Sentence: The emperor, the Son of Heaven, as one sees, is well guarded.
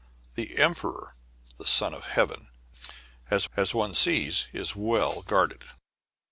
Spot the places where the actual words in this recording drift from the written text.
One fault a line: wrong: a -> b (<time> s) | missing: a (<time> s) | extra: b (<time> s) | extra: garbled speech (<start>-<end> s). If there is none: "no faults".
extra: as (3.5 s)